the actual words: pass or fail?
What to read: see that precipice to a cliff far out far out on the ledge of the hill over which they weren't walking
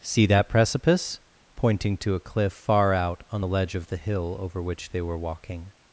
fail